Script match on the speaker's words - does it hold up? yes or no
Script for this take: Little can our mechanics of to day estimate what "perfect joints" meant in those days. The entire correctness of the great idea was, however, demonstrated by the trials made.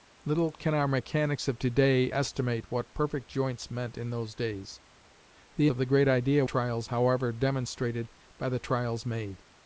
no